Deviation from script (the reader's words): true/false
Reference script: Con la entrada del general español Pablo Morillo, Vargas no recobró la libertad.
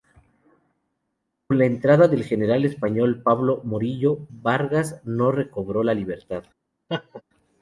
false